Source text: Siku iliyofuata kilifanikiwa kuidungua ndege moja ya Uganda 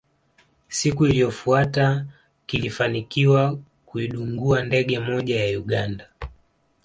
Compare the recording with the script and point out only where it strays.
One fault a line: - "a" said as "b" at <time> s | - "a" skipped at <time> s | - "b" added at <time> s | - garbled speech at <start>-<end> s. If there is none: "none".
none